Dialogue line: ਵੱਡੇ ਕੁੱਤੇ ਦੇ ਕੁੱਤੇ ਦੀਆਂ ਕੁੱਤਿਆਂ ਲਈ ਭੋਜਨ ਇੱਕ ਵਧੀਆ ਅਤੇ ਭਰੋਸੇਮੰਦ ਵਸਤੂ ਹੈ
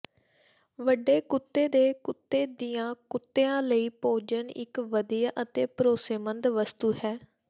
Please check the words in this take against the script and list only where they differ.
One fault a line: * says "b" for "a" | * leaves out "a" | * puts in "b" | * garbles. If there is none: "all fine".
all fine